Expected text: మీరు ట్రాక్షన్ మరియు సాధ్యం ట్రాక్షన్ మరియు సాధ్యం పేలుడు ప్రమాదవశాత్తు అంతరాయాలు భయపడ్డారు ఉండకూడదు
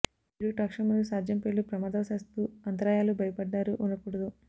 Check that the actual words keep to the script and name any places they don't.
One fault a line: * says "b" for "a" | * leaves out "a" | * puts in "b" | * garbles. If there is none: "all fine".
* leaves out "ట్రాక్షన్ మరియు సాధ్యం"